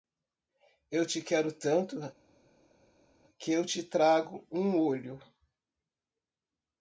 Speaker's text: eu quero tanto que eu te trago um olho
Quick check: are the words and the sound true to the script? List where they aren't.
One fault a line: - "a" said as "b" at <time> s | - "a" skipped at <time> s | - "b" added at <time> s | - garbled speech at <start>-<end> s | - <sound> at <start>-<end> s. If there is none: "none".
- "te" added at 1.1 s